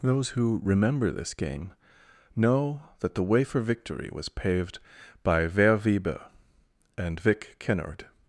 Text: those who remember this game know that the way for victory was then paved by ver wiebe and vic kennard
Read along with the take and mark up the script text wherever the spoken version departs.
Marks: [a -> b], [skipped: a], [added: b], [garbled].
those who remember this game know that the way for victory was [skipped: then] paved by ver wiebe and vic kennard